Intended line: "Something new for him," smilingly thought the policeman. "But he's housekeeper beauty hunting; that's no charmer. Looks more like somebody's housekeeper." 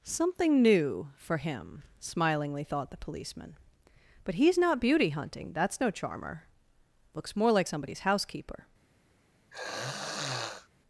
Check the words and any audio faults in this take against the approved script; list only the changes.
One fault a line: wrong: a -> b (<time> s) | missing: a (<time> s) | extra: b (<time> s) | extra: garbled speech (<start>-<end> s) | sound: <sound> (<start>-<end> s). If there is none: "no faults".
wrong: housekeeper -> not (4.6 s)
sound: throat clearing (9.5-10.7 s)